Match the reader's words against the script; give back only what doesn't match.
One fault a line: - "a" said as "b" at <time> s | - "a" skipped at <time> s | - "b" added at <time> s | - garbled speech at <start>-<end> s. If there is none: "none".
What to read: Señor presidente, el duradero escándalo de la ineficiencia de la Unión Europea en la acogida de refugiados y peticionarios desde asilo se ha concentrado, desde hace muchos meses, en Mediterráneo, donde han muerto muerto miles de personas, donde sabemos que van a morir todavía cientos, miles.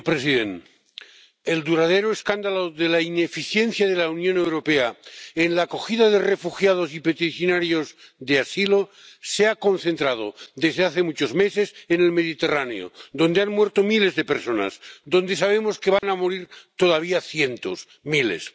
- "desde" said as "de" at 8.2 s
- "el" added at 12.0 s
- "muerto" skipped at 13.8 s